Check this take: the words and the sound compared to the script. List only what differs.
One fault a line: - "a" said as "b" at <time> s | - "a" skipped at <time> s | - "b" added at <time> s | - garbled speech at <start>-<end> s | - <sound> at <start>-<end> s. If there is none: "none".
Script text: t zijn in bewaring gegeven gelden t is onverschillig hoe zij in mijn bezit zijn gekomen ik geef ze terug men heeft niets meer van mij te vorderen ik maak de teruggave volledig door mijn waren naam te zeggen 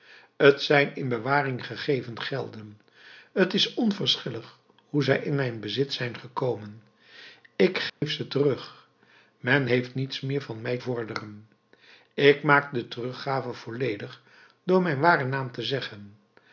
- dropout at 7.9-8.0 s
- "te" skipped at 10.8 s